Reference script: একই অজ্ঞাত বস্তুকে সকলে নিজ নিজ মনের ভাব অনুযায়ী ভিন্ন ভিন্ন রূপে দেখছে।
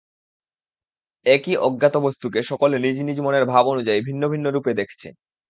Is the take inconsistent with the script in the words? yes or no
no